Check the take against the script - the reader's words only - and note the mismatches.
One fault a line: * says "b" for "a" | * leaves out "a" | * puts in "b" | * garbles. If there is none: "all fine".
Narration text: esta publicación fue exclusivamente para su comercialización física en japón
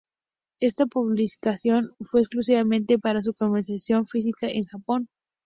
all fine